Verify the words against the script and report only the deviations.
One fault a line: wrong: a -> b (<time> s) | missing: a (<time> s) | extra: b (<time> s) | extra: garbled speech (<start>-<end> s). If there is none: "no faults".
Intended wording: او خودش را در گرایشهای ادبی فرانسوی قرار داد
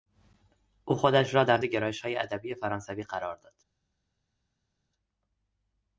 no faults